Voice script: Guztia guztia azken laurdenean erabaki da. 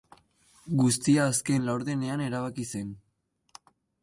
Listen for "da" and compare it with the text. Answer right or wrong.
wrong